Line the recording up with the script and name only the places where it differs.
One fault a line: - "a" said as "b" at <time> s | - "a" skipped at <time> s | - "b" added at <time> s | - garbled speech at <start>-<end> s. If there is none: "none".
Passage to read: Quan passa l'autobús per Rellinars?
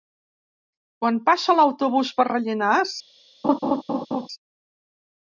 none